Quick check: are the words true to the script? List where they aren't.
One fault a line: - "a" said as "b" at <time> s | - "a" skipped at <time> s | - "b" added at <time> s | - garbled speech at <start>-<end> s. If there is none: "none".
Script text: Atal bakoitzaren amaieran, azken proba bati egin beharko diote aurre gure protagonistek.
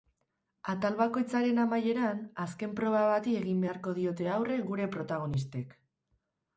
none